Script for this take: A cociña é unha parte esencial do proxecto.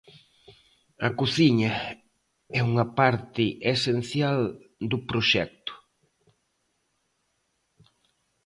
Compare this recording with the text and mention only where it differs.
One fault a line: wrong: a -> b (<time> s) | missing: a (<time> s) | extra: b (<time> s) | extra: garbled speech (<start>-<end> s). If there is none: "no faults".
no faults